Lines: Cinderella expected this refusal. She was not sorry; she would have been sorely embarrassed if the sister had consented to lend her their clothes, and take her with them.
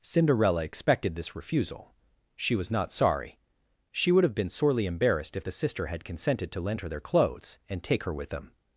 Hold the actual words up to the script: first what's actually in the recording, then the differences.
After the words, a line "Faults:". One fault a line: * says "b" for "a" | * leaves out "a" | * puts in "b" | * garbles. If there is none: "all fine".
Cinderella expected this refusal. She was not sorry; she would have been sorely embarrassed if the sister had consented to lend her their clothes, and take her with them.
Faults:
all fine